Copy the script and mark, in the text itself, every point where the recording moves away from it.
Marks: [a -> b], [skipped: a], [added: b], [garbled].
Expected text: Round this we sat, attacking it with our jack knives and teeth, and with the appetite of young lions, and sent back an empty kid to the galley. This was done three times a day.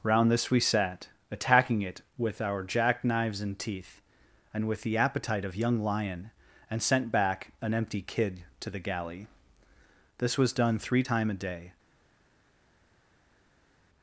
Round this we sat, attacking it with our jack knives and teeth, and with the appetite of young [lions, -> lion] and sent back an empty kid to the galley. This was done three [times -> time] a day.